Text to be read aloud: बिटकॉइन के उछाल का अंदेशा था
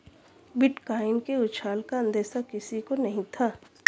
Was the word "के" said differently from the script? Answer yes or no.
no